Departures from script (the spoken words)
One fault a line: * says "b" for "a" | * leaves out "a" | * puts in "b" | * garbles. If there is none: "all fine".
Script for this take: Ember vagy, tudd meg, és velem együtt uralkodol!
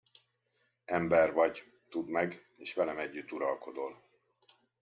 all fine